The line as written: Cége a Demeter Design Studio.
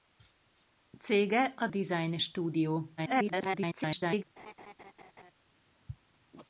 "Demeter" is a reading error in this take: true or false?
true